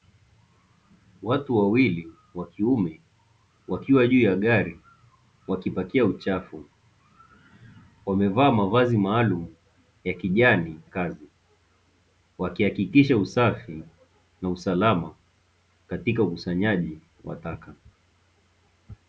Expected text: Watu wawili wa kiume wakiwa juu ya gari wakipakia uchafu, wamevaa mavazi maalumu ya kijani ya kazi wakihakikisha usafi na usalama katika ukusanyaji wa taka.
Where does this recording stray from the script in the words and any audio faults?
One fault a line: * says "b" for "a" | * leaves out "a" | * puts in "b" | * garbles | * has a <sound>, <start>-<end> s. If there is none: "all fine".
* leaves out "ya"